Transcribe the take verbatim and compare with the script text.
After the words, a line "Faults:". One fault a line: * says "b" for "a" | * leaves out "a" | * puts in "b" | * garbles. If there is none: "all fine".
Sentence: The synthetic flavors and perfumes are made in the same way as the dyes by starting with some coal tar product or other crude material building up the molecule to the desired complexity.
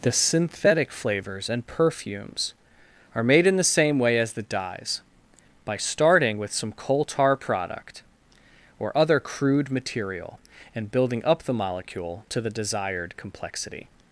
The synthetic flavors and perfumes are made in the same way as the dyes by starting with some coal tar product or other crude material and building up the molecule to the desired complexity.
Faults:
* puts in "and"